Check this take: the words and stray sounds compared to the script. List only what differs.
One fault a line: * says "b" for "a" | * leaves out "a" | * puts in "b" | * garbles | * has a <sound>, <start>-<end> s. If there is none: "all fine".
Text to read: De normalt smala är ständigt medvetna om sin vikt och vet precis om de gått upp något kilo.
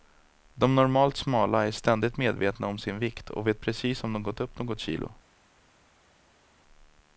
all fine